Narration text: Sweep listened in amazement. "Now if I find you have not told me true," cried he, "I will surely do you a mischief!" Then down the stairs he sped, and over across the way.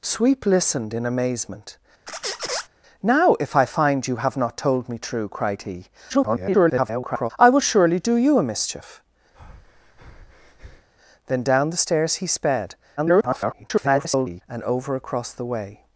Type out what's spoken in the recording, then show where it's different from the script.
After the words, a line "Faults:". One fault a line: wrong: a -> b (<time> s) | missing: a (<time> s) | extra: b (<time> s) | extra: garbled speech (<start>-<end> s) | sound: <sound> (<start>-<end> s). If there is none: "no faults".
Sweep listened in amazement. "Now if I find you have not told me true," cried he, [garbled] "I will surely do you a mischief!" Then down the stairs he sped, [garbled] and over across the way.
Faults:
sound: squeak (2.1-2.7 s)
extra: garbled speech (6.1-7.3 s)
sound: breath (9.3-10.9 s)
extra: garbled speech (13.0-14.4 s)